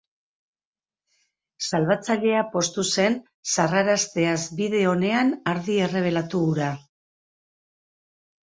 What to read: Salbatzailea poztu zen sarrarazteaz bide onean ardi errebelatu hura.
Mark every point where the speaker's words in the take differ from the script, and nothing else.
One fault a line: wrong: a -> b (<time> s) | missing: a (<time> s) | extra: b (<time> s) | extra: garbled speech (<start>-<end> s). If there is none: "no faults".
no faults